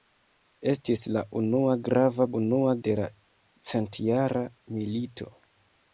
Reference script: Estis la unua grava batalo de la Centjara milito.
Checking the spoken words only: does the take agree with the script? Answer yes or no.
no